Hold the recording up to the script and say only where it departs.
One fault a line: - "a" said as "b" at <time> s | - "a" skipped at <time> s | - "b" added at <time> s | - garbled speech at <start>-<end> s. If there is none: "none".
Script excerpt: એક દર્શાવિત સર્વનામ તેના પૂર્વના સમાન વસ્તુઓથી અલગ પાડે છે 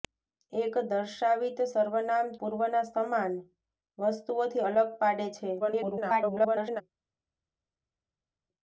- "તેના" skipped at 2.3 s
- garbled speech at 5.6-6.8 s